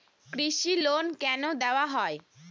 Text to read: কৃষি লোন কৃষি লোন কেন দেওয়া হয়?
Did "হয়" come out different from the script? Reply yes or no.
no